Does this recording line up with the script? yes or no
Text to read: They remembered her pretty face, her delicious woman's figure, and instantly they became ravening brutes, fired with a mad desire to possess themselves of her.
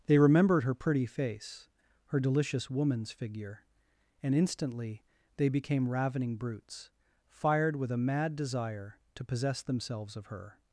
yes